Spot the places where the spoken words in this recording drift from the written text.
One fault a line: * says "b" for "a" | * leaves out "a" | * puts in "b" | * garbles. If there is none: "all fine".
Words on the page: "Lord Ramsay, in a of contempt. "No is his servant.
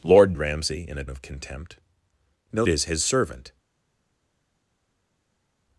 all fine